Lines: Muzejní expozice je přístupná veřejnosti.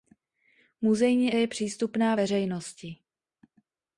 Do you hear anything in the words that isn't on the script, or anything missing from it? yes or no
yes